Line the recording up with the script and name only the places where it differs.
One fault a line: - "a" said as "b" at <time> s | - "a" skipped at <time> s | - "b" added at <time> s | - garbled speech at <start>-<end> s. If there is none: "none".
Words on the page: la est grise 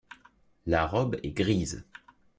- "robe" added at 0.9 s